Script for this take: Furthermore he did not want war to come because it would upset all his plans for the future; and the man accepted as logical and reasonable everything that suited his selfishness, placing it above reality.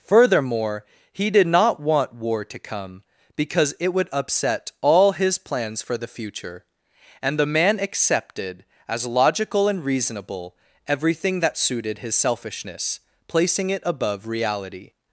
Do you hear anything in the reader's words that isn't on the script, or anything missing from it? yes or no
no